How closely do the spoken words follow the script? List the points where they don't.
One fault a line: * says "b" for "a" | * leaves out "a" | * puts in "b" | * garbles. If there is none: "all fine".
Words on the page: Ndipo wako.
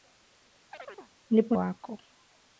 all fine